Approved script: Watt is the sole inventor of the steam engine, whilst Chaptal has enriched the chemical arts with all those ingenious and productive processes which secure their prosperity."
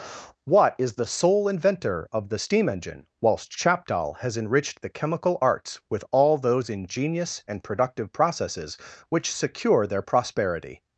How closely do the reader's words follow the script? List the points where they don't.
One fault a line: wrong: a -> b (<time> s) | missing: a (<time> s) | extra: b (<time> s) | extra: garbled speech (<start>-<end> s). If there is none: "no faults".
no faults